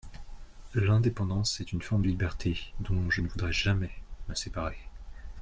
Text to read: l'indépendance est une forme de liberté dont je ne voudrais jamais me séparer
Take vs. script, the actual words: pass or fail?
fail